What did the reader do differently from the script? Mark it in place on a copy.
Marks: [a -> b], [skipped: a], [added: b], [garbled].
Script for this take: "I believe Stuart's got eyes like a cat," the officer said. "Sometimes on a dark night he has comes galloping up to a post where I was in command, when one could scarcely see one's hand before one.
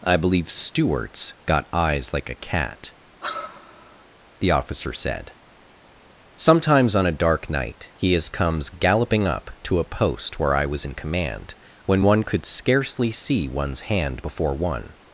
"I believe Stuart's got eyes like a cat," the officer said. "Sometimes on a dark night he has comes galloping up to a post where I was in command, when one could scarcely see one's hand before one.